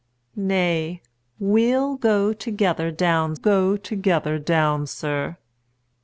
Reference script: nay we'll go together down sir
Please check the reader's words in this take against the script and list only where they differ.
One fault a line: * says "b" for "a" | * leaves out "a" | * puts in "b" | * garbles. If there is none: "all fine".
* puts in "go together down"